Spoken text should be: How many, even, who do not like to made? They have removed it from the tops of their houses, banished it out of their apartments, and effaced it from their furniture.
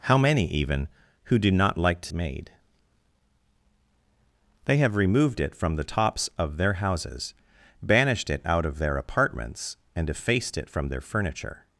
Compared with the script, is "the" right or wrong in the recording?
right